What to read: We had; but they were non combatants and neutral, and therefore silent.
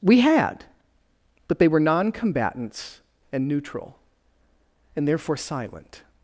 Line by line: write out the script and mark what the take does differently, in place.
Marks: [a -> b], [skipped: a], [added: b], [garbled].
We had; but they were non combatants and neutral, and therefore silent.